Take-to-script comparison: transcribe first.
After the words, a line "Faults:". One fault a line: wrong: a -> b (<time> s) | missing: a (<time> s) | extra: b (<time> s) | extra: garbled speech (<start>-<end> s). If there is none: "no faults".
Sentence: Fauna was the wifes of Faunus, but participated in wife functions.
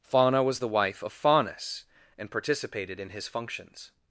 Fauna was the wife of Faunus, and participated in his functions.
Faults:
wrong: wifes -> wife (0.7 s)
wrong: but -> and (2.2 s)
wrong: wife -> his (3.1 s)